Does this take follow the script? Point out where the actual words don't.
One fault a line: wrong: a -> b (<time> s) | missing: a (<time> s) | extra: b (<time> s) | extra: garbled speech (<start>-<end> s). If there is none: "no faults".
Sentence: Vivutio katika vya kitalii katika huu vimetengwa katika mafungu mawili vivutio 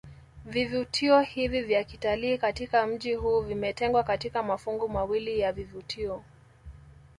wrong: katika -> hivi (1.2 s)
extra: mji (2.9 s)
extra: ya (5.4 s)